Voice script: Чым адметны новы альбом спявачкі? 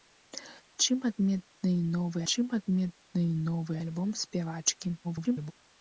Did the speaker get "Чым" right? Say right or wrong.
right